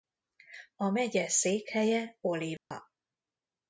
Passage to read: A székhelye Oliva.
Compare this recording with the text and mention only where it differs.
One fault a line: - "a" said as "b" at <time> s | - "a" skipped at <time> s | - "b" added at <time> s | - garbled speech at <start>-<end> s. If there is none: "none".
- "megye" added at 0.9 s